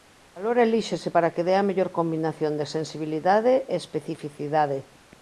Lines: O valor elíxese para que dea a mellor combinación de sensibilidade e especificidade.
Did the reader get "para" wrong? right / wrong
right